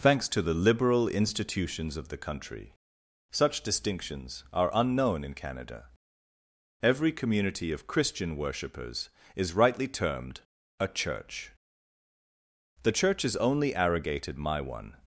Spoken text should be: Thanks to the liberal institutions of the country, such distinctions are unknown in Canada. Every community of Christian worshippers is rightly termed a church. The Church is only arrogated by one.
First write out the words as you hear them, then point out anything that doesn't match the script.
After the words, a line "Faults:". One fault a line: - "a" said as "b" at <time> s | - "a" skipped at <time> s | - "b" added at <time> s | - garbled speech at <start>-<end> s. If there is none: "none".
Thanks to the liberal institutions of the country, such distinctions are unknown in Canada. Every community of Christian worshippers is rightly termed a church. The Church is only arrogated my one.
Faults:
- "by" said as "my" at 14.4 s